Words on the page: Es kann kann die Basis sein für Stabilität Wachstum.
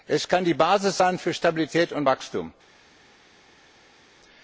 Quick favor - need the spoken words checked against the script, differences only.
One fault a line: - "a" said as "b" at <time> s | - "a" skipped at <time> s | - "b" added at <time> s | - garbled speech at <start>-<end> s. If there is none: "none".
- "kann" skipped at 0.5 s
- "und" added at 1.9 s